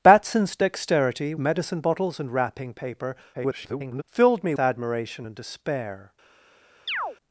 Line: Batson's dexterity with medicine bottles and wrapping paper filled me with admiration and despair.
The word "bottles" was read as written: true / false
true